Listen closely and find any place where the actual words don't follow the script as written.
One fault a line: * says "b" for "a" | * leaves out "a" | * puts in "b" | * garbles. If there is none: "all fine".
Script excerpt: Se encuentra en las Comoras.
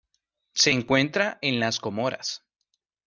all fine